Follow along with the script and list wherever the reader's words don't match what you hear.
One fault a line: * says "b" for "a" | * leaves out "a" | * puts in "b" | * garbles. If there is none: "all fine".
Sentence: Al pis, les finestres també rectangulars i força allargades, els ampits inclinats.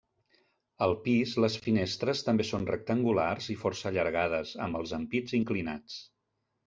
* puts in "són"
* puts in "amb"